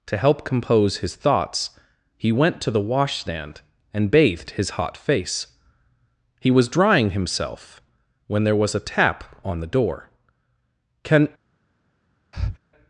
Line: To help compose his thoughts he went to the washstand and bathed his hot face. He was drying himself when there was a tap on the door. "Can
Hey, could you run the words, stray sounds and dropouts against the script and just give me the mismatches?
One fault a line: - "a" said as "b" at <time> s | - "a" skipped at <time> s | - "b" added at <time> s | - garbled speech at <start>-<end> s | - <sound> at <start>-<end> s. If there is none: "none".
- breath at 12.3-12.6 s